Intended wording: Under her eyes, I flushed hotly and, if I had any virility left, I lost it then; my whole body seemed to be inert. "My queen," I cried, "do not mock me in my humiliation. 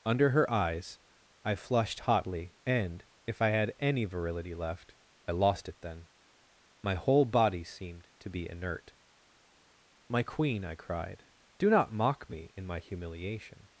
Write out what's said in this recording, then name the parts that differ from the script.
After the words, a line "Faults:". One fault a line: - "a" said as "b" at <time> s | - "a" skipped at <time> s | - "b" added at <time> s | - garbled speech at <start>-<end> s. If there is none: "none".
Under her eyes, I flushed hotly and, if I had any virility left, I lost it then; my whole body seemed to be inert. "My queen," I cried, "do not mock me in my humiliation.
Faults:
none